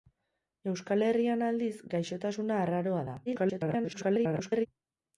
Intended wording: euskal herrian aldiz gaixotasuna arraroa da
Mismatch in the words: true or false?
true